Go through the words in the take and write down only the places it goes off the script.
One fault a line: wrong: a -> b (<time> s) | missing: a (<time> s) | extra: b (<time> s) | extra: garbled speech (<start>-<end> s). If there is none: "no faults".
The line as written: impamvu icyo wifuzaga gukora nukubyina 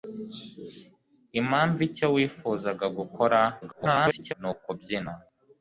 extra: garbled speech (3.6-4.3 s)